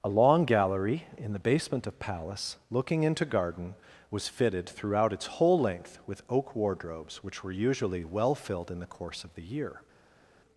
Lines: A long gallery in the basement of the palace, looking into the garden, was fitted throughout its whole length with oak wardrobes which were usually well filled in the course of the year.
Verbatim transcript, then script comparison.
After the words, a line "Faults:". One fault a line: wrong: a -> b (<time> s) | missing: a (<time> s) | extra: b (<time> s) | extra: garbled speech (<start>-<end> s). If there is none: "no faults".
A long gallery in the basement of palace, looking into garden, was fitted throughout its whole length with oak wardrobes which were usually well filled in the course of the year.
Faults:
missing: the (2.0 s)
missing: the (3.3 s)